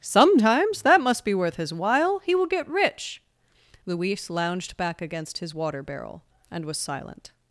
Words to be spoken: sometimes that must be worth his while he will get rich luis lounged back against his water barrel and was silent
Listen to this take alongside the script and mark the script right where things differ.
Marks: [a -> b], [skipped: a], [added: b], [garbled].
sometimes that must be worth his while he will get rich luis lounged back against his water barrel and was silent